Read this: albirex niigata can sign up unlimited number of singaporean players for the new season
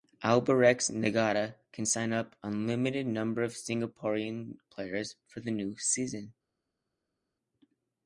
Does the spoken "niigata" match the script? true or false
true